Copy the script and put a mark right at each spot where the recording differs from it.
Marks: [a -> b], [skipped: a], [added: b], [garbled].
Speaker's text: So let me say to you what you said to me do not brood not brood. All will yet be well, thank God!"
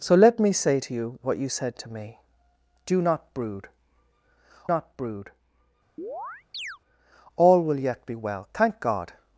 So let me say to you what you said to me do not brood not brood. All will yet be well, thank God!"